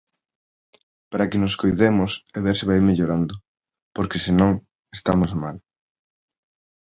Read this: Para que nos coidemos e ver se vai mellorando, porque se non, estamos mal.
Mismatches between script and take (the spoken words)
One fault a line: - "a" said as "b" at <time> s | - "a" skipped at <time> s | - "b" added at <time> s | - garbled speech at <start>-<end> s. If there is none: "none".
none